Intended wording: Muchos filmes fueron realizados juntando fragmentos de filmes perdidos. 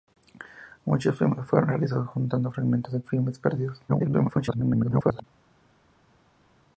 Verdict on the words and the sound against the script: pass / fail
fail